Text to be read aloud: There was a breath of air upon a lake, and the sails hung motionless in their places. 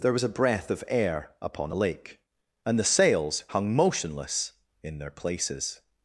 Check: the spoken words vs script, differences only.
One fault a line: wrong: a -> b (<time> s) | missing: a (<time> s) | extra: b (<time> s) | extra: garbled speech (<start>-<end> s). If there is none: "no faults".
no faults